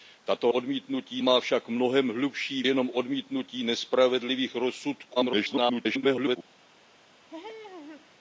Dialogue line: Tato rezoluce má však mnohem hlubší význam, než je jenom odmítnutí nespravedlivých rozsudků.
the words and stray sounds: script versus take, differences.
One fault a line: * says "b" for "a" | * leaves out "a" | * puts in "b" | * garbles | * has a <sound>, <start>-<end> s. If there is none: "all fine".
* says "odmítnutí" for "rezoluce"
* leaves out "význam než je"
* garbles
* has a laugh, 7.3-8.2 s